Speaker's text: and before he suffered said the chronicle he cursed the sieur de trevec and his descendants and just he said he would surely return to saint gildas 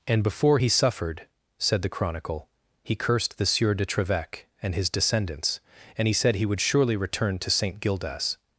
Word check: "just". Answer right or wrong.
wrong